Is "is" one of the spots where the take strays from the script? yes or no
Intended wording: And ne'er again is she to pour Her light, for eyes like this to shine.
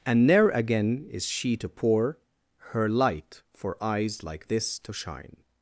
no